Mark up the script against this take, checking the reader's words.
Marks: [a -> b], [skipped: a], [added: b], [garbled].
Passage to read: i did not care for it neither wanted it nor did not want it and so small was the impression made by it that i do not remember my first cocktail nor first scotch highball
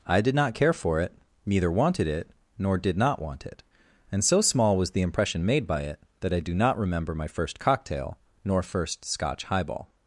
i did not care for it neither wanted it nor did not want it and so small was the impression made by it that i do not remember my first cocktail nor first scotch highball